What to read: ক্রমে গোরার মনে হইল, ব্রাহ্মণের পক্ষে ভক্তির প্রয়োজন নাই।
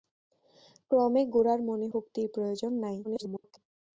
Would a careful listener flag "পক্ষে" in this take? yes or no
yes